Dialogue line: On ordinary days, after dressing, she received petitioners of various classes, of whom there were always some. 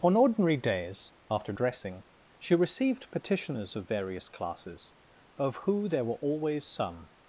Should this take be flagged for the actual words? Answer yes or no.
yes